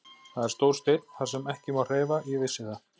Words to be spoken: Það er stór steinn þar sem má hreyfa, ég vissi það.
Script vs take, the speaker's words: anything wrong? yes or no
yes